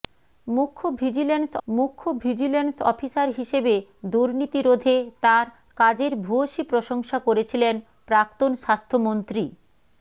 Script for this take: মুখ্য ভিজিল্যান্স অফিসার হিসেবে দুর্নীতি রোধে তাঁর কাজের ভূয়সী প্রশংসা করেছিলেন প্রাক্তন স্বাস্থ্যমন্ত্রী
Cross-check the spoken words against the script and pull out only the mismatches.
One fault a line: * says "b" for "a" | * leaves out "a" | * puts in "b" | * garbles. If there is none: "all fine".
* puts in "মুখ্য ভিজিল্যান্স"